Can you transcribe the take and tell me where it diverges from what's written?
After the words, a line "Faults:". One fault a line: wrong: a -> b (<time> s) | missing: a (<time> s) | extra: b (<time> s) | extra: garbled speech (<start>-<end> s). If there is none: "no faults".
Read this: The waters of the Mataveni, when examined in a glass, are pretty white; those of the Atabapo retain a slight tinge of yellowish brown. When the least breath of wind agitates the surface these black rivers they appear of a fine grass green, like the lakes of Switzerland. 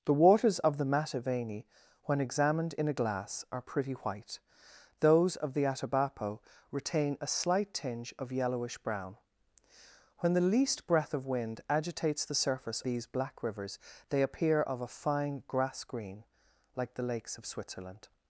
The waters of the Mataveni, when examined in a glass, are pretty white; those of the Atabapo retain a slight tinge of yellowish brown. When the least breath of wind agitates the surface these black rivers they appear of a fine grass green, like the lakes of Switzerland.
Faults:
no faults